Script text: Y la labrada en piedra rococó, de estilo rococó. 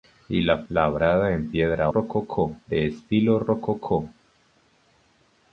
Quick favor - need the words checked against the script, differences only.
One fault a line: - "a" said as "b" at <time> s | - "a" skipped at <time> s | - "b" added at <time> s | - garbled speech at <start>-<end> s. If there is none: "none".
none